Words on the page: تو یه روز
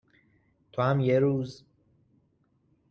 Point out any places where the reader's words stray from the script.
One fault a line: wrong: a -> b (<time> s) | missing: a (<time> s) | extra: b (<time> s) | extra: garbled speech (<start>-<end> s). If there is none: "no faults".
extra: هم (0.8 s)